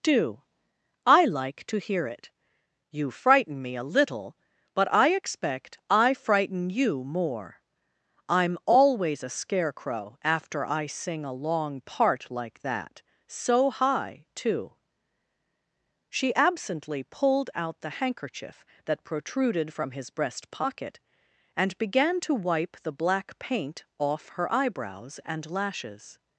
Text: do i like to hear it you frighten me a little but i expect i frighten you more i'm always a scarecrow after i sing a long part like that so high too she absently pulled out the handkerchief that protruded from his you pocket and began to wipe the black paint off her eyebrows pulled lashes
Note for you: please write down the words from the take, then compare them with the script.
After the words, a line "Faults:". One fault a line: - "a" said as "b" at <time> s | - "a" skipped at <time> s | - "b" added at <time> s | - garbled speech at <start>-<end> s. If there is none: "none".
do i like to hear it you frighten me a little but i expect i frighten you more i'm always a scarecrow after i sing a long part like that so high too she absently pulled out the handkerchief that protruded from his breast pocket and began to wipe the black paint off her eyebrows and lashes
Faults:
- "you" said as "breast" at 20.1 s
- "pulled" said as "and" at 25.3 s